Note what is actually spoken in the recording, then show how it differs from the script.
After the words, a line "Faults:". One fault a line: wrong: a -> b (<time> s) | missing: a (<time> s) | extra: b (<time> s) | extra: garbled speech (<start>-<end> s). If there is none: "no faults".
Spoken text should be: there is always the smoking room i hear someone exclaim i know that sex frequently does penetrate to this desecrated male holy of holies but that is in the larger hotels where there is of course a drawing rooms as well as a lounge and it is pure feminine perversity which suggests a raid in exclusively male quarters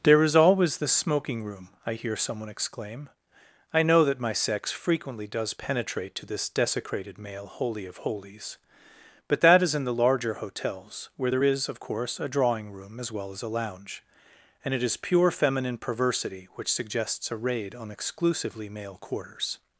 there is always the smoking room i hear someone exclaim i know that my sex frequently does penetrate to this desecrated male holy of holies but that is in the larger hotels where there is of course a drawing room as well as a lounge and it is pure feminine perversity which suggests a raid on exclusively male quarters
Faults:
extra: my (4.2 s)
wrong: rooms -> room (12.7 s)
wrong: in -> on (17.7 s)